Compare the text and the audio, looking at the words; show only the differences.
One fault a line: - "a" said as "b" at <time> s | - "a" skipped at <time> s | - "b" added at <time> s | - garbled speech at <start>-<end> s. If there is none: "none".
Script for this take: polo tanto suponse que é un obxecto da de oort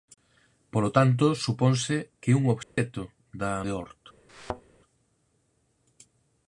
none